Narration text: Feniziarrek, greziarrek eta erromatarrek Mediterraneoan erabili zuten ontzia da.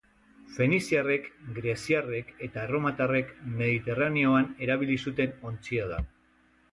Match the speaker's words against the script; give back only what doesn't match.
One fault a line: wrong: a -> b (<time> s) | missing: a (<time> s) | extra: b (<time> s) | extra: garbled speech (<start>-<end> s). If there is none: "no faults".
no faults